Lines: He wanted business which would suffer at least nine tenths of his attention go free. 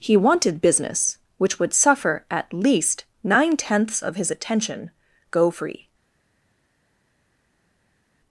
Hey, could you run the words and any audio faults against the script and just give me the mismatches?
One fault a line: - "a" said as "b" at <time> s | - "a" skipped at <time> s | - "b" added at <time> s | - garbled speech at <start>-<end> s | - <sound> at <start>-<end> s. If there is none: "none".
none